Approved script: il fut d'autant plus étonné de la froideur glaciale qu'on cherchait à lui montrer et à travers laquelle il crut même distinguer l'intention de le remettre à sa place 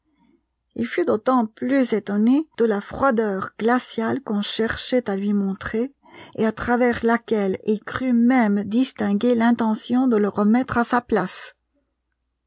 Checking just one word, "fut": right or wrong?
right